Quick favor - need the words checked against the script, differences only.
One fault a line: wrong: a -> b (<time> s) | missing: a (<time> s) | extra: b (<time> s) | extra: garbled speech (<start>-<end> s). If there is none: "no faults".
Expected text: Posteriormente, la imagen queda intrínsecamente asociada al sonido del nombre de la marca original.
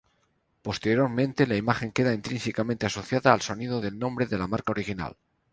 no faults